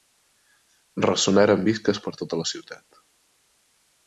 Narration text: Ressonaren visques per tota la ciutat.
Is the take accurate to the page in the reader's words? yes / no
yes